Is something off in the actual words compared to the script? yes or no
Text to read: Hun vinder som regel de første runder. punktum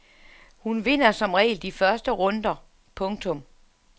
no